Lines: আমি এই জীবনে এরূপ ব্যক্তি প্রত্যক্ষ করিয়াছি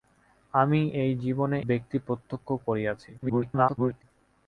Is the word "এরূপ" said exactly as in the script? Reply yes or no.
no